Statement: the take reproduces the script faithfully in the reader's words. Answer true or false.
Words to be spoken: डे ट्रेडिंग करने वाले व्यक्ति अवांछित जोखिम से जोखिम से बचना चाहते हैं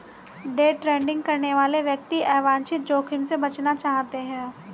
false